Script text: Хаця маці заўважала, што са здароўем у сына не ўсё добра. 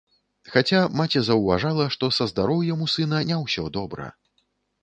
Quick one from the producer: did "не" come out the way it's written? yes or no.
yes